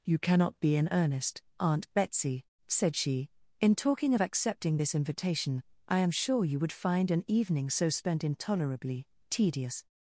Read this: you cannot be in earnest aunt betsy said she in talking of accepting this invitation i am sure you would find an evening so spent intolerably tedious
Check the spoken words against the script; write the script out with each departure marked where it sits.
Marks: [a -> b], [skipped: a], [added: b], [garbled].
you cannot be in earnest aunt betsy said she in talking of accepting this invitation i am sure you would find an evening so spent intolerably tedious